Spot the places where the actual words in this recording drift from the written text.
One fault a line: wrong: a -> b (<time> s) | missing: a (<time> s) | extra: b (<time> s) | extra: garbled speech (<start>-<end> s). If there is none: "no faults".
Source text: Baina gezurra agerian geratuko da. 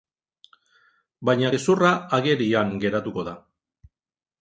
no faults